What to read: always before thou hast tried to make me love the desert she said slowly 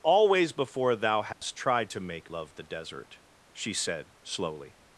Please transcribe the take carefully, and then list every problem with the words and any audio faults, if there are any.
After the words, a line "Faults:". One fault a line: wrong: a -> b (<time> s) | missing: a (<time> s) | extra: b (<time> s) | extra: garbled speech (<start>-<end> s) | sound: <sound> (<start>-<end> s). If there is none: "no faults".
always before thou hast tried to make love the desert she said slowly
Faults:
sound: dropout (1.3-1.4 s)
missing: me (2.3 s)